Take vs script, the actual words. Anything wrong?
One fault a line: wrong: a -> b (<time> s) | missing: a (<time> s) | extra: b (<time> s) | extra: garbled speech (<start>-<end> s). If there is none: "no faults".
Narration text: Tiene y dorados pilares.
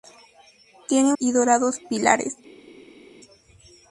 no faults